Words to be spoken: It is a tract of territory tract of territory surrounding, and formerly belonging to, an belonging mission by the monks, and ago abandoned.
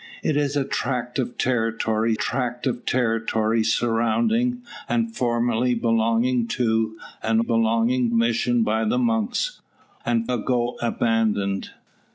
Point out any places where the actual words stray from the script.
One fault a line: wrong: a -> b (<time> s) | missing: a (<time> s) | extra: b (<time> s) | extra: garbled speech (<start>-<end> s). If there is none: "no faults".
no faults